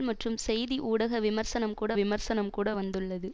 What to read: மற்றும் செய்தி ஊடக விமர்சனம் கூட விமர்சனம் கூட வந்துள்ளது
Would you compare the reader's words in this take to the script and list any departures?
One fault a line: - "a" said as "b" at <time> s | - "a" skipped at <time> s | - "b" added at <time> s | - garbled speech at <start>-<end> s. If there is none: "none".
none